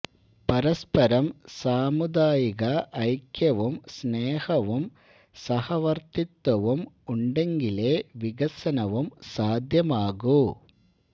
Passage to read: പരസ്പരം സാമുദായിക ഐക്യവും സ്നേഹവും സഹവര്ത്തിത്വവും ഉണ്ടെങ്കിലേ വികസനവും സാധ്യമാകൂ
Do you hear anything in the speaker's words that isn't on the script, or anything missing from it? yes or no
no